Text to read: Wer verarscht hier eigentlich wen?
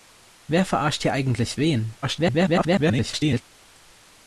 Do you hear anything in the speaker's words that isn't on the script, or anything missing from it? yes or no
yes